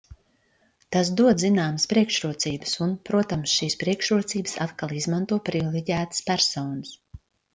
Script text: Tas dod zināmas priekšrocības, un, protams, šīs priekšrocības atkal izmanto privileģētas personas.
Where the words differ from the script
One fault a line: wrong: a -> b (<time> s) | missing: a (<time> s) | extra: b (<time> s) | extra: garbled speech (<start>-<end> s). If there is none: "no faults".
no faults